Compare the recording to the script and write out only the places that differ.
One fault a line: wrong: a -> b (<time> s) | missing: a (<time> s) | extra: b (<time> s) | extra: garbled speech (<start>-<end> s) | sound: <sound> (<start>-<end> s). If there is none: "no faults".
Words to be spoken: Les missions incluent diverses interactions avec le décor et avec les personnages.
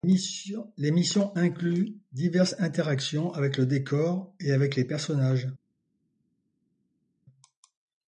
no faults